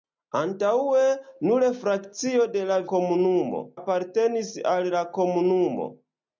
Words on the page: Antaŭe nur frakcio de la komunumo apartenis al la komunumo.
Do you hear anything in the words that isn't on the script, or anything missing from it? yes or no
no